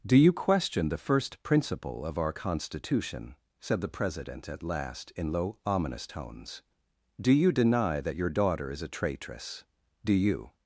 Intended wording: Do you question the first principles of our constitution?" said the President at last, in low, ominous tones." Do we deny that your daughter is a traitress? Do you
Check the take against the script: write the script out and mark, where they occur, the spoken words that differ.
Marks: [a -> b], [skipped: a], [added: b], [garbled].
Do you question the first [principles -> principle] of our constitution?" said the President at last, in low, ominous tones." Do [we -> you] deny that your daughter is a traitress? Do you